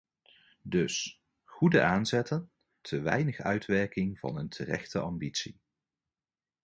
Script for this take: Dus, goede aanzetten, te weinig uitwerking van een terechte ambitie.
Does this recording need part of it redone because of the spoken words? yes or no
no